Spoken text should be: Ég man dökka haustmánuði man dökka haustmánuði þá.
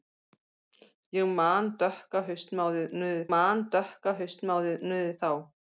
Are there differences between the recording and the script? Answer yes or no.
no